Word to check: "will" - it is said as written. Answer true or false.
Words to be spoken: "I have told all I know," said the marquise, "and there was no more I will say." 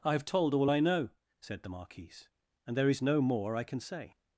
false